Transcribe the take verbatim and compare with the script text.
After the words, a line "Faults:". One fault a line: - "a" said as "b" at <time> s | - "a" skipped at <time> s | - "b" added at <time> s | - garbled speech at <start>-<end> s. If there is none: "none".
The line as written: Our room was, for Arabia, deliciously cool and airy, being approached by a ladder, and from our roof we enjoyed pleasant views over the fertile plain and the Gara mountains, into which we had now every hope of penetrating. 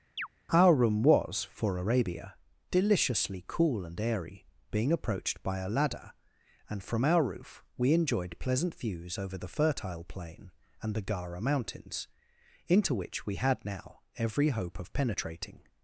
Our room was, for Arabia, deliciously cool and airy, being approached by a ladder, and from our roof we enjoyed pleasant views over the fertile plain and the Gara mountains, into which we had now every hope of penetrating.
Faults:
none